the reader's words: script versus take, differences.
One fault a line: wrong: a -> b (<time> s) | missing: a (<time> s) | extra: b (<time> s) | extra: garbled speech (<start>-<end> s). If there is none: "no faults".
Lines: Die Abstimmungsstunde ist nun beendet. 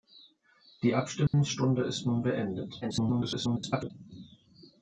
extra: garbled speech (2.8-3.9 s)